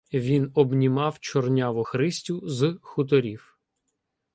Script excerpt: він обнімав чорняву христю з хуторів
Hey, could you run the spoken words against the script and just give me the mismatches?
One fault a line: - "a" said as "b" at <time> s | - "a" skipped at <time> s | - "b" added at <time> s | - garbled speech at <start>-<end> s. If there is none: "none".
none